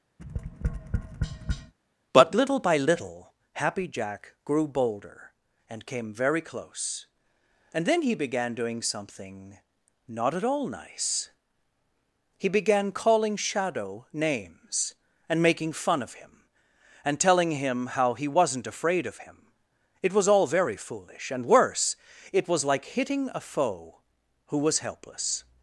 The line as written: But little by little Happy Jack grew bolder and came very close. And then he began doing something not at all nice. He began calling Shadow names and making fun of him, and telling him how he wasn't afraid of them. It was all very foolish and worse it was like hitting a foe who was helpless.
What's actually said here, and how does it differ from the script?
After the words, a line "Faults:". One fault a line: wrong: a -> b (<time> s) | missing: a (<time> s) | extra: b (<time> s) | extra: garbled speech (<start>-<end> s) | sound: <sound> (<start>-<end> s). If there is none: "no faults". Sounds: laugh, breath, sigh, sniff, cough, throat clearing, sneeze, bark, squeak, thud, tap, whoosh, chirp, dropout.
But little by little Happy Jack grew bolder and came very close. And then he began doing something not at all nice. He began calling Shadow names and making fun of him, and telling him how he wasn't afraid of him. It was all very foolish and worse it was like hitting a foe who was helpless.
Faults:
sound: tap (0.2-1.7 s)
wrong: them -> him (19.2 s)